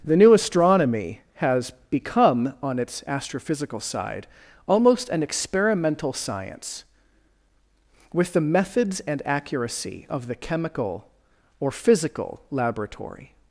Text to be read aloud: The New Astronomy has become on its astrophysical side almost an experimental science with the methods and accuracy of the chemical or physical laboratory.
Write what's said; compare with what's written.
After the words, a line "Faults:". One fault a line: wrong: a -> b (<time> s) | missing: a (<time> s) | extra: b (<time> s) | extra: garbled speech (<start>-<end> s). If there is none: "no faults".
The New Astronomy has become on its astrophysical side almost an experimental science with the methods and accuracy of the chemical or physical laboratory.
Faults:
no faults